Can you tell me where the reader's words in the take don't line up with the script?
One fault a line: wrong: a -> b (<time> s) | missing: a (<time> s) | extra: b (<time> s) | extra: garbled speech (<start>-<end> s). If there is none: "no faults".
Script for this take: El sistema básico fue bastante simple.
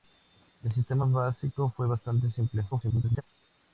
extra: garbled speech (2.7-3.2 s)